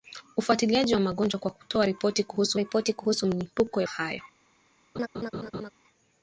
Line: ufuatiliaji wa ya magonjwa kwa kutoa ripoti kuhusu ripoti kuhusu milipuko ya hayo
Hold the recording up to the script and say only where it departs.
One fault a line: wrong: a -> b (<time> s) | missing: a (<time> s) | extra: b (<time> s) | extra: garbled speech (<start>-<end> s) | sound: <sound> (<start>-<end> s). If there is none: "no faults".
sound: laugh (4.9-5.7 s)